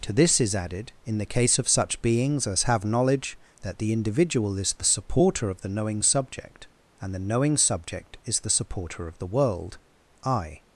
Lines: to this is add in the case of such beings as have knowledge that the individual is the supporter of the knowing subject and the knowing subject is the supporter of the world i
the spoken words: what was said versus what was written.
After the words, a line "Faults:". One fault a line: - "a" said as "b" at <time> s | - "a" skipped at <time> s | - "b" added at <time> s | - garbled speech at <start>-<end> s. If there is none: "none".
to this is added in the case of such beings as have knowledge that the individual is the supporter of the knowing subject and the knowing subject is the supporter of the world i
Faults:
- "add" said as "added" at 0.6 s